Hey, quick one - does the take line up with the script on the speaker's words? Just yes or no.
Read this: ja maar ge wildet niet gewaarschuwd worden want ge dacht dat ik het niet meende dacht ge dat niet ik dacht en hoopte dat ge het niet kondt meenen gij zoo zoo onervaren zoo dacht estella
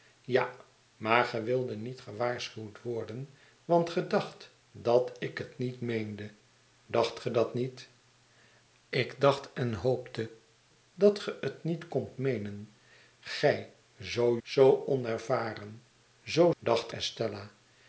yes